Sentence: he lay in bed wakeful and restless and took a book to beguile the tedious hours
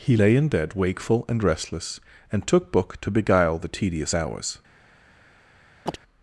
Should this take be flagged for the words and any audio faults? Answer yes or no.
yes